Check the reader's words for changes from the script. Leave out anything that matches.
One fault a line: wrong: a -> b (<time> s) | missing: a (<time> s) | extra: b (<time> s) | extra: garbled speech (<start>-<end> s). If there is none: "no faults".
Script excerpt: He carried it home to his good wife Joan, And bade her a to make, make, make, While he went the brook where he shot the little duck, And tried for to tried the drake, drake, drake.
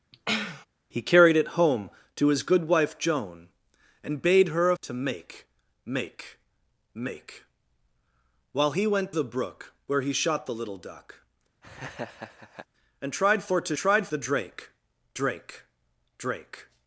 no faults